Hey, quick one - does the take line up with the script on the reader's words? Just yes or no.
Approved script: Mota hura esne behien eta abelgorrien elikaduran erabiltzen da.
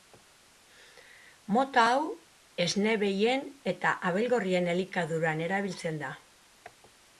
no